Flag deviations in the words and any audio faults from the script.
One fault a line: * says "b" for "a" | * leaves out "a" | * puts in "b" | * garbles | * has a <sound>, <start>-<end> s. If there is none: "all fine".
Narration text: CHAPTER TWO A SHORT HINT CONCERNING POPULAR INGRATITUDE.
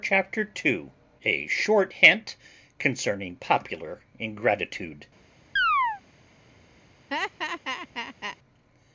* has a chirp, 5.6-6.0 s
* has a laugh, 7.1-8.4 s